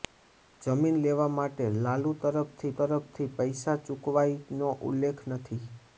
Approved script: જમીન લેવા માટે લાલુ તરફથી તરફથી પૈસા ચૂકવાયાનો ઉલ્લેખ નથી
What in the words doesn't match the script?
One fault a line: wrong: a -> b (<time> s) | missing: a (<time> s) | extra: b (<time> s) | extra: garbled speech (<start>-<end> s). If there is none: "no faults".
no faults